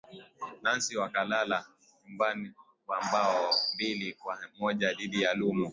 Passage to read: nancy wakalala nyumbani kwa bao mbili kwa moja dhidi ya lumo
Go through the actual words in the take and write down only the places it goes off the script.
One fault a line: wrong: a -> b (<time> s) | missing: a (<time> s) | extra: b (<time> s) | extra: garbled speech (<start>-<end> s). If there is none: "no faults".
no faults